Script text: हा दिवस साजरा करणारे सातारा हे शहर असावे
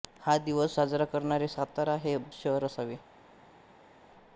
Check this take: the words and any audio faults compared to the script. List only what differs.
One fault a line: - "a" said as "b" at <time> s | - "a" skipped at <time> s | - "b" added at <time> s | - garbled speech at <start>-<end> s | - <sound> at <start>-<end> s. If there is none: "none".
none